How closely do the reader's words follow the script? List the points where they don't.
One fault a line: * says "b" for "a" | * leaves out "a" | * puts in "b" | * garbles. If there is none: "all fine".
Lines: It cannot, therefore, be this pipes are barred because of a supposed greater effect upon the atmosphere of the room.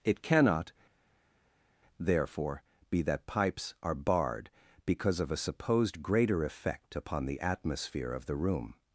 * says "that" for "this"